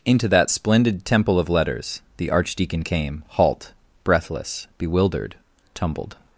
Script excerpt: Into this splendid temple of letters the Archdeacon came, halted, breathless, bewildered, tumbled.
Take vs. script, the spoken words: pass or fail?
fail